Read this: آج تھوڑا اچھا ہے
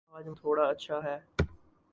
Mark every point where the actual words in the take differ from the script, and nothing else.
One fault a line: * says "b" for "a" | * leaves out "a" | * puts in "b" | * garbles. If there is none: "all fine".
all fine